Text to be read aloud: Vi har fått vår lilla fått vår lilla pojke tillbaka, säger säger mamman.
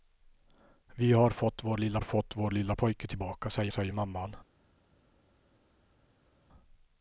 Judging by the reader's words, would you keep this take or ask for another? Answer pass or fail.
pass